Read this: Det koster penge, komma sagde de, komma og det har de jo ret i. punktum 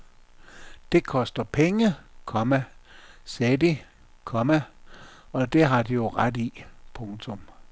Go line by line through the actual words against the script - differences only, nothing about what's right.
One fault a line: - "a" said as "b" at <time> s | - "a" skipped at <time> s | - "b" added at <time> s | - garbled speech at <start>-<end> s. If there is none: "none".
none